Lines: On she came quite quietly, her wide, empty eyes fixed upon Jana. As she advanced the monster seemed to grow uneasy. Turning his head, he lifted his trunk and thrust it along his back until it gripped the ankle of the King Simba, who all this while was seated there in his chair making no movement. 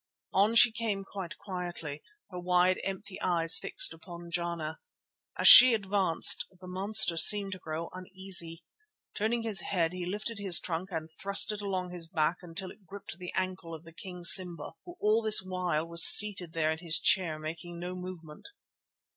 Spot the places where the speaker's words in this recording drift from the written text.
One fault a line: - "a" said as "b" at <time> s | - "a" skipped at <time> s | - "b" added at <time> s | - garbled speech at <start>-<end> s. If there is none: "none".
none